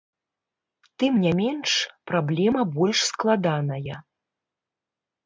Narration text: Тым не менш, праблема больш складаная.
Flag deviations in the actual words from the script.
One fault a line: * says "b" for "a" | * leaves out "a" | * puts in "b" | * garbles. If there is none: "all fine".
all fine